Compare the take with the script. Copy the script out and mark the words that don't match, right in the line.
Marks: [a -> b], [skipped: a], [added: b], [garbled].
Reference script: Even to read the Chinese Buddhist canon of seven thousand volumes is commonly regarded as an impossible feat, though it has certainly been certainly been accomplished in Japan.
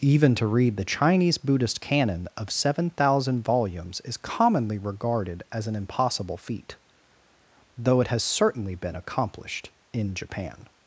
Even to read the Chinese Buddhist canon of seven thousand volumes is commonly regarded as an impossible feat, though it has certainly been [skipped: certainly been] accomplished in Japan.